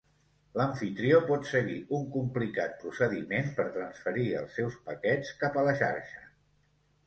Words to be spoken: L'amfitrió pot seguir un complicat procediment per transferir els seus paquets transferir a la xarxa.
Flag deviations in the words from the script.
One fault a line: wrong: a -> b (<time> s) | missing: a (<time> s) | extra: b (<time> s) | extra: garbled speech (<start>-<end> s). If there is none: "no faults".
wrong: transferir -> cap (5.4 s)